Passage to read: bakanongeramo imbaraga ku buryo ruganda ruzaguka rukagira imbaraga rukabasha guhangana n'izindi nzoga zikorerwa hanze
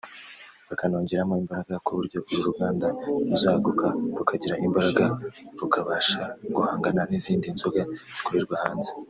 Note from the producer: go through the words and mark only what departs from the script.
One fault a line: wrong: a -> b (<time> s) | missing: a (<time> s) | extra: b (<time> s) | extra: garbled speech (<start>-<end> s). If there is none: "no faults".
extra: uru (2.3 s)